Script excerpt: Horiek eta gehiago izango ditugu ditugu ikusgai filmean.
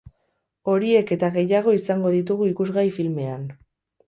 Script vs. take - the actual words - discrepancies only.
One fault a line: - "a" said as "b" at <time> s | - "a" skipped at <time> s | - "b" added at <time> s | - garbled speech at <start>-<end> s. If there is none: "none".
- "ditugu" skipped at 2.5 s